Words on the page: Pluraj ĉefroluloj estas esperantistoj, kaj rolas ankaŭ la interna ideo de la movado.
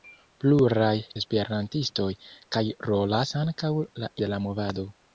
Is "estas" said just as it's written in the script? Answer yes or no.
no